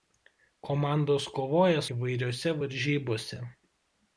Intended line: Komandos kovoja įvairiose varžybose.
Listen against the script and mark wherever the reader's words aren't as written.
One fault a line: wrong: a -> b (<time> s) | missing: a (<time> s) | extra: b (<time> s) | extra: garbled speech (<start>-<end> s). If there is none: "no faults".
no faults